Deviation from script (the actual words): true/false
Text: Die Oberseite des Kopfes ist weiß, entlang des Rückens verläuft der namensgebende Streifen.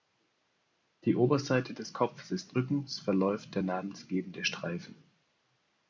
true